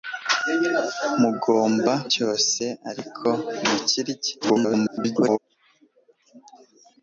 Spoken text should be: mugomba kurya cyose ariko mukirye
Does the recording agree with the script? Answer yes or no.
no